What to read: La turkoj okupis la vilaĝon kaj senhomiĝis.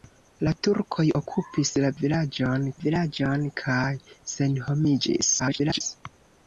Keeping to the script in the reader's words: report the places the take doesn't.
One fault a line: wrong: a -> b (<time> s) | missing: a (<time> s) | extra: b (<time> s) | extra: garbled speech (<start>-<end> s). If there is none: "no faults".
extra: vilaĝon (2.8 s)
extra: garbled speech (5.4-5.8 s)